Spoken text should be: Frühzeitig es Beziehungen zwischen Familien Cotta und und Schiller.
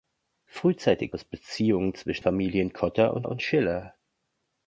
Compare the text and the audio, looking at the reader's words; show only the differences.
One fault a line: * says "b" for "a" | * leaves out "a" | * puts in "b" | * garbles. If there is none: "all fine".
all fine